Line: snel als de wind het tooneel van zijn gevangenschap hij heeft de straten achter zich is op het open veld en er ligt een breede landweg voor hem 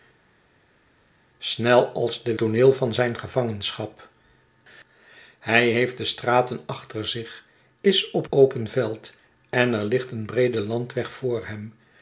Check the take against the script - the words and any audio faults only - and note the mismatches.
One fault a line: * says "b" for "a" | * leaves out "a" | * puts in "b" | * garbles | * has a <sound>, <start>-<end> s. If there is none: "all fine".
* leaves out "wind het"
* leaves out "het"